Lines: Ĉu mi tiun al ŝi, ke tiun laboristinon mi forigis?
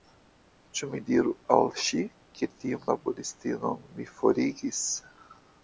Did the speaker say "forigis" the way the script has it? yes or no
yes